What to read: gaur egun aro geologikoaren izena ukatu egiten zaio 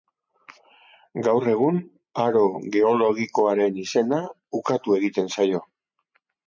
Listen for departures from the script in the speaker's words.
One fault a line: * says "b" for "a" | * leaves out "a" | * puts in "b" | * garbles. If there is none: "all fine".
all fine